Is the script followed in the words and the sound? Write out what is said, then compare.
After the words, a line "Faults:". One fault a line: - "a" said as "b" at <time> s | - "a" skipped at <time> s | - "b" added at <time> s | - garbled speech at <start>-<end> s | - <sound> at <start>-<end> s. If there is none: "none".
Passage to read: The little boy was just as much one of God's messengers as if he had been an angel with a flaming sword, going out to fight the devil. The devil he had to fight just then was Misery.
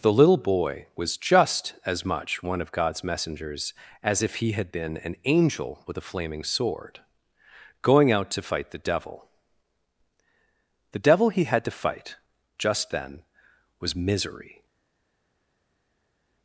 The little boy was just as much one of God's messengers as if he had been an angel with a flaming sword, going out to fight the devil. The devil he had to fight just then was Misery.
Faults:
none